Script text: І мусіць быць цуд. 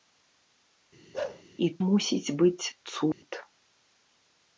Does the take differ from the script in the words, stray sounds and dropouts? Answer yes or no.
yes